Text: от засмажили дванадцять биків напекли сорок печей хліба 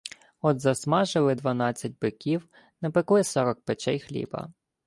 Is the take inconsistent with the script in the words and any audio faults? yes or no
no